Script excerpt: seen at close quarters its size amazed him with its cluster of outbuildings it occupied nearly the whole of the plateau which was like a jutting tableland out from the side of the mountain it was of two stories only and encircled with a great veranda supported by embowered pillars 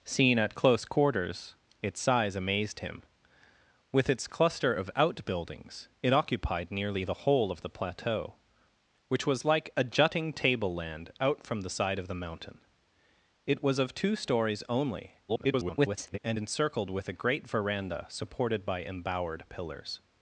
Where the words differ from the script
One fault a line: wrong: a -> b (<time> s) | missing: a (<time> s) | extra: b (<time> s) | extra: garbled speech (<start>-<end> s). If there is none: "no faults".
extra: garbled speech (15.3-16.2 s)